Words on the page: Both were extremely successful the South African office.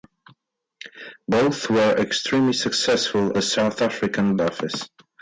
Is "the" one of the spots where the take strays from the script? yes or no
no